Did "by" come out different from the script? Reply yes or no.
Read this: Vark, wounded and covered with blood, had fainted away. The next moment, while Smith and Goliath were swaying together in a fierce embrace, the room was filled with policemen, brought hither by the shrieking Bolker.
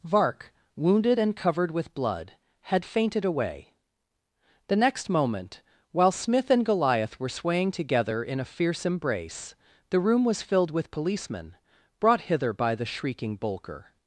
no